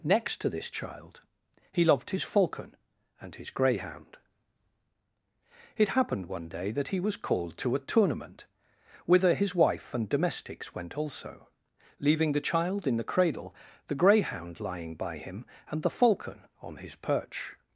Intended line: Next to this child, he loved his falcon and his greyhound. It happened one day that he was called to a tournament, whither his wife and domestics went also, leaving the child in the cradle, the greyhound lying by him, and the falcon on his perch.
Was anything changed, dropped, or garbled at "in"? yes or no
no